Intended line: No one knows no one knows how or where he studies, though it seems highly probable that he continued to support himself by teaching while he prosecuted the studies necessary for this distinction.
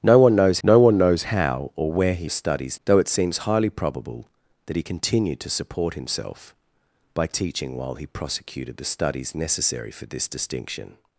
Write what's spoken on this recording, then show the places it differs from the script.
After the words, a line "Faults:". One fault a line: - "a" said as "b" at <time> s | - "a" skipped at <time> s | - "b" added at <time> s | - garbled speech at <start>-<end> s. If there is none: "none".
No one knows no one knows how or where he studies, though it seems highly probable that he continued to support himself by teaching while he prosecuted the studies necessary for this distinction.
Faults:
none